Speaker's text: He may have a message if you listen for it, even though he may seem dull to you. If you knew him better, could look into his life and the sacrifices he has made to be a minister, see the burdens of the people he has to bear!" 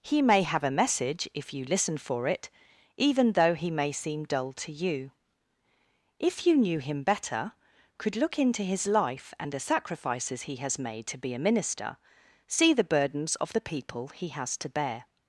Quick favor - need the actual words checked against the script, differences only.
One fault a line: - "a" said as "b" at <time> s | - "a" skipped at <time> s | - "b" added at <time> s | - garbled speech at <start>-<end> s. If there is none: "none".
none